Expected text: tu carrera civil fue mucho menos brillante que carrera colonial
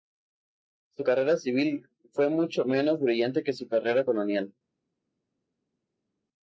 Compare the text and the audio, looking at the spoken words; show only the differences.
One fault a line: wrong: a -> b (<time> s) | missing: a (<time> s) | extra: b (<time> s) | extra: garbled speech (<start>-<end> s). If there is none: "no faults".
wrong: tu -> su (0.9 s)
extra: su (3.5 s)